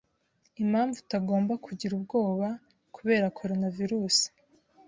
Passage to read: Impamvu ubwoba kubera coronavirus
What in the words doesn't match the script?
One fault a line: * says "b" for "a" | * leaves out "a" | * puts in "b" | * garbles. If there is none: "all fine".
* puts in "utagomba kugira"